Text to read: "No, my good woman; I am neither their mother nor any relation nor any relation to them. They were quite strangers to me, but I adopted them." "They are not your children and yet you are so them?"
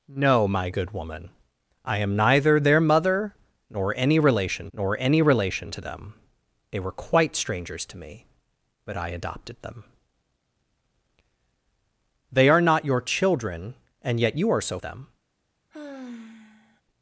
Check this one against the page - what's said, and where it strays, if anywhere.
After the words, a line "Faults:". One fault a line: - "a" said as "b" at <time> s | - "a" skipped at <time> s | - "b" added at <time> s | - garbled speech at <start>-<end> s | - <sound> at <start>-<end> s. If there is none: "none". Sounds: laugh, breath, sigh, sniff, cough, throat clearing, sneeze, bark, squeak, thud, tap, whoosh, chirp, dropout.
"No, my good woman; I am neither their mother nor any relation nor any relation to them. They were quite strangers to me, but I adopted them." "They are not your children and yet you are so them?"
Faults:
- sigh at 15.7-16.8 s